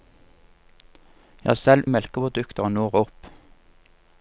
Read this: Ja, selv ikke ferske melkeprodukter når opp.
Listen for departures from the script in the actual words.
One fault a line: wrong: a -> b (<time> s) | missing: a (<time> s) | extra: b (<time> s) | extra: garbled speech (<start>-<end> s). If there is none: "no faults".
missing: ikke ferske (1.9 s)